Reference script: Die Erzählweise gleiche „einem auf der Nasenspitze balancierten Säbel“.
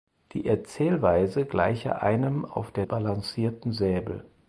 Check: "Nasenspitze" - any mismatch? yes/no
yes